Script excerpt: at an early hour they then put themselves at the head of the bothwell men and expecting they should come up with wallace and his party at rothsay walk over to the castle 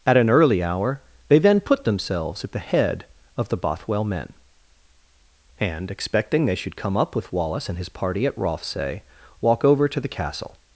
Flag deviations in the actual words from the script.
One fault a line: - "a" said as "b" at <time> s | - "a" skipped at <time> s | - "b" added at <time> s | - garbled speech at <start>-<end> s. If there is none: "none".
none